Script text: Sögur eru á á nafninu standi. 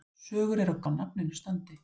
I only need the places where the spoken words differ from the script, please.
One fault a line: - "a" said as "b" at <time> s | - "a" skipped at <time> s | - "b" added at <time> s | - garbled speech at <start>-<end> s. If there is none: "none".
none